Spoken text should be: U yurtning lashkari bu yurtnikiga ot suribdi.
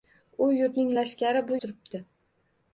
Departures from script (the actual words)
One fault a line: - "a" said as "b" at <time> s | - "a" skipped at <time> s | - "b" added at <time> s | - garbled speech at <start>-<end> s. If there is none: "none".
- "yurtnikiga ot" skipped at 1.6 s